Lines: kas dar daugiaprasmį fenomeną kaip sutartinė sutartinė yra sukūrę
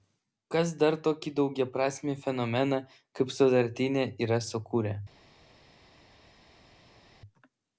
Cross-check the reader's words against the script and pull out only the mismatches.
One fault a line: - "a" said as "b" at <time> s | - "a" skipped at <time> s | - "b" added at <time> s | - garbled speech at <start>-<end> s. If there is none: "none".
- "tokį" added at 1.1 s
- "sutartinė" skipped at 4.1 s